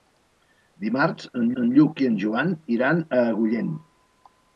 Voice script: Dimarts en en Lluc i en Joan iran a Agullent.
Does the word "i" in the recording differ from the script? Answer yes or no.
no